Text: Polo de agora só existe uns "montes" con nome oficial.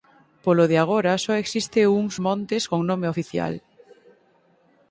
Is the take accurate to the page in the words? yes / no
yes